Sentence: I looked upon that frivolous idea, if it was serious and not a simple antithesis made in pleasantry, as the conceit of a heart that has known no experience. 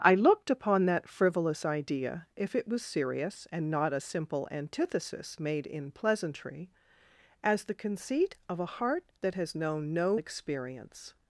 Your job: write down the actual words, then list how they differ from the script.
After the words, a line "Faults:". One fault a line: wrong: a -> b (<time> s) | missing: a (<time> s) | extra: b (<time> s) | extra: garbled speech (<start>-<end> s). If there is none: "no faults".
I looked upon that frivolous idea, if it was serious and not a simple antithesis made in pleasantry, as the conceit of a heart that has known no experience.
Faults:
no faults